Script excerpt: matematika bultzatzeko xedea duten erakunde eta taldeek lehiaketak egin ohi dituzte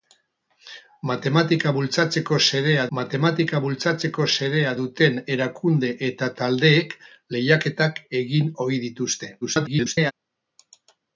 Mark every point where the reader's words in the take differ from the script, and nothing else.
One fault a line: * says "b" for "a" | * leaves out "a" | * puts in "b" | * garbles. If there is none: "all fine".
* puts in "matematika bultzatzeko xedea"
* garbles